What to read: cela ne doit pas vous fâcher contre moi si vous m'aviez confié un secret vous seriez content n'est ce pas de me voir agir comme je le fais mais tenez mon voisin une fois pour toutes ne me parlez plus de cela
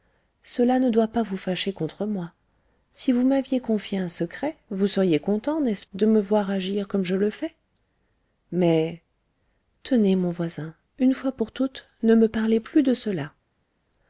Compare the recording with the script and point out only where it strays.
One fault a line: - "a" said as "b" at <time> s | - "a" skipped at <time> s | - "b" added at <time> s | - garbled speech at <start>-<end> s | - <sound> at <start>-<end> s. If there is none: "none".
- "pas" skipped at 5.8 s